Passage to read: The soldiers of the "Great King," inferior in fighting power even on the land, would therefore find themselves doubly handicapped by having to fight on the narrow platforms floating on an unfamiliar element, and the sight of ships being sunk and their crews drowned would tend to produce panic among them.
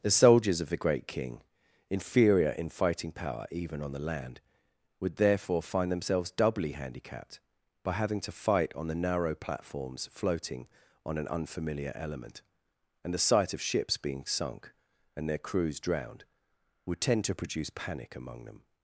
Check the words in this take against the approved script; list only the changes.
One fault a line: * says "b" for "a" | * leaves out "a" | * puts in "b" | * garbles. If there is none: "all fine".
all fine